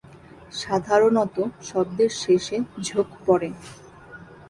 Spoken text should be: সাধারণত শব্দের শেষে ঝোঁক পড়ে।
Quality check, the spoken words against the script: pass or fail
pass